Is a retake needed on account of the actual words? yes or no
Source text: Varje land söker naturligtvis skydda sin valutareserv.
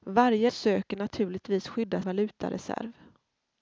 yes